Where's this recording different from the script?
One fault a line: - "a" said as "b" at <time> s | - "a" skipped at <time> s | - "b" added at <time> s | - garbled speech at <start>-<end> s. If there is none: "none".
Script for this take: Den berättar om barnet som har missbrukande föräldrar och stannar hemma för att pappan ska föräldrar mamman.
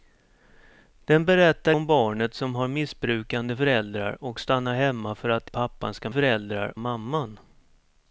none